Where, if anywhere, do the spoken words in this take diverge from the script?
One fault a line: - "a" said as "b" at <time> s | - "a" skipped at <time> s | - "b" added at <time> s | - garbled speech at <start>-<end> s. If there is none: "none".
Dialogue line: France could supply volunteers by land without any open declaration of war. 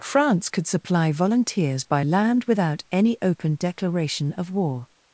none